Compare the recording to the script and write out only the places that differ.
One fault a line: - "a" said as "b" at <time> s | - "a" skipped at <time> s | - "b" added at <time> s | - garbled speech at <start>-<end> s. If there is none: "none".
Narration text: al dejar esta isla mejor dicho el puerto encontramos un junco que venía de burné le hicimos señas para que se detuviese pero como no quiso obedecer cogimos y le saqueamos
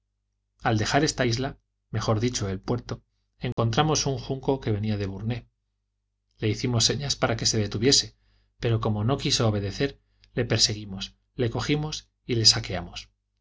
- "le perseguimos le" added at 10.3 s